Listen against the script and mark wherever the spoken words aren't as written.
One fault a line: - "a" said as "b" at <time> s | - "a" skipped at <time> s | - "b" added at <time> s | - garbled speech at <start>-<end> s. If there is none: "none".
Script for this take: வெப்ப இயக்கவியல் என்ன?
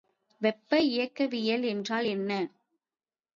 - "என்றால்" added at 1.6 s